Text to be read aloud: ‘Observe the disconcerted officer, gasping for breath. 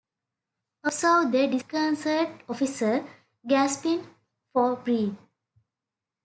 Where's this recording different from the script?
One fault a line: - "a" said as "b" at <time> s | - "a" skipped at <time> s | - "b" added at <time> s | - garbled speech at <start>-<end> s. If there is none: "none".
none